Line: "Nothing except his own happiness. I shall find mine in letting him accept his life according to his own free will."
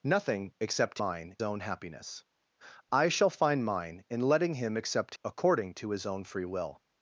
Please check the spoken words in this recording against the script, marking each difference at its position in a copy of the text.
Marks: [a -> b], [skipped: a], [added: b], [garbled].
"Nothing except [his -> mine] own happiness. I shall find mine in letting him accept [skipped: his life] according to his own free will."